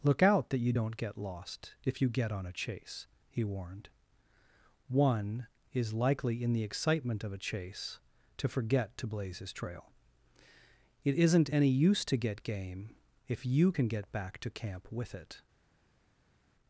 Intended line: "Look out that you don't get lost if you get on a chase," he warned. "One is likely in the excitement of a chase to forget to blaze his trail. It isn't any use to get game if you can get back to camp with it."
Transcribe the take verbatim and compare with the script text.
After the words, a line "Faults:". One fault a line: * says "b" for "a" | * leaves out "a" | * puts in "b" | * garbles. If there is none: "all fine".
"Look out that you don't get lost if you get on a chase," he warned. "One is likely in the excitement of a chase to forget to blaze his trail. It isn't any use to get game if you can get back to camp with it."
Faults:
all fine